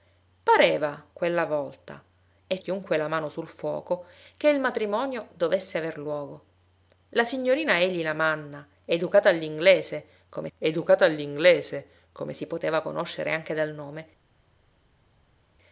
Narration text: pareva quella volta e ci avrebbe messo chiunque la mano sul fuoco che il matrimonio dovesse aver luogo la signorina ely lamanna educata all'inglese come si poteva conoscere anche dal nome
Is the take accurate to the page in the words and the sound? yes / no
no